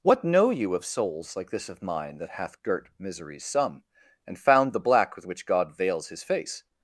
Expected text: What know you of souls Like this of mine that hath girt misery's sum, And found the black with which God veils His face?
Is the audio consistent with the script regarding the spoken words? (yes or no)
yes